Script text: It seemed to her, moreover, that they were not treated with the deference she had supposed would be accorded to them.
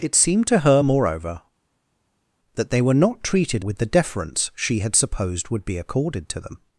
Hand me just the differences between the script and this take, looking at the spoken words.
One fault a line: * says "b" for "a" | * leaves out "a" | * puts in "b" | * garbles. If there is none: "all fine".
all fine